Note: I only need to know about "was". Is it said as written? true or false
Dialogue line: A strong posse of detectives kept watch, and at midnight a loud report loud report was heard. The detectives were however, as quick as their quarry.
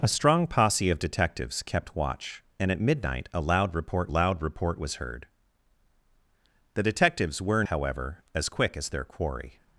true